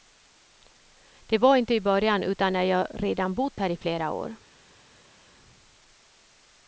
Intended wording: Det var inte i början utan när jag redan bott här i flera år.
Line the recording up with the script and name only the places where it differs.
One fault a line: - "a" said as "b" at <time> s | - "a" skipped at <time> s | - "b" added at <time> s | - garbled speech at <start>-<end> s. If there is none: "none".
none